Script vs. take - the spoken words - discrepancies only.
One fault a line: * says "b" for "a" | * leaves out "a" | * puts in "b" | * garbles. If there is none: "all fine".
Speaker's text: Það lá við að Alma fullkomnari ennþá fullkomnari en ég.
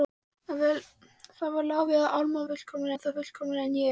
all fine